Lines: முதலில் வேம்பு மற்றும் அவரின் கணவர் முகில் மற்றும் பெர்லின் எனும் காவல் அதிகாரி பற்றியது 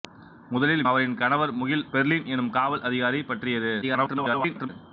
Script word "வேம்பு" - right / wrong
wrong